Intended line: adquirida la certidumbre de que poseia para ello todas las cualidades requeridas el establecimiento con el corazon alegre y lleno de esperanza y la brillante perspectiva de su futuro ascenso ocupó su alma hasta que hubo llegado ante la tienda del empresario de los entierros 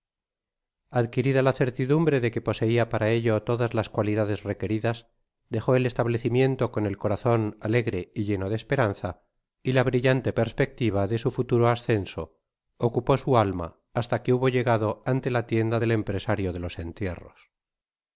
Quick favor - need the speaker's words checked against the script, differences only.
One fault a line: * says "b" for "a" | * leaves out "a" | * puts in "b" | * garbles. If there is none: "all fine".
* puts in "dejo"